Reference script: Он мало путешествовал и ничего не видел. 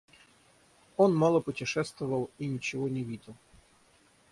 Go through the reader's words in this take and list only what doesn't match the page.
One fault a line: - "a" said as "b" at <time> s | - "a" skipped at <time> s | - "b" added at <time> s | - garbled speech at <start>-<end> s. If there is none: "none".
none